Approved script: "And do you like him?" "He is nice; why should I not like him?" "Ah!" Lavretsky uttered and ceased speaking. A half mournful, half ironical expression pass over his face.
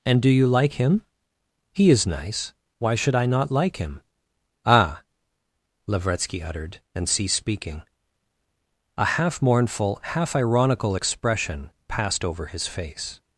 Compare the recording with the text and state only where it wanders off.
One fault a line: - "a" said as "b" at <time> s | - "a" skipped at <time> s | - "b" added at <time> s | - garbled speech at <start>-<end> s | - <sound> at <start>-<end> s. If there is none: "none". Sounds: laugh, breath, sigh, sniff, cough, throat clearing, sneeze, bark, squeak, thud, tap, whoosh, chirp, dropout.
- "pass" said as "passed" at 11.9 s